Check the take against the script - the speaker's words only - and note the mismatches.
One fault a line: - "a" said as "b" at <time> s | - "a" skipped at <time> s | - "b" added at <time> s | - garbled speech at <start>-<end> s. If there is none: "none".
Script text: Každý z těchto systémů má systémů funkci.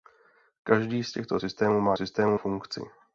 none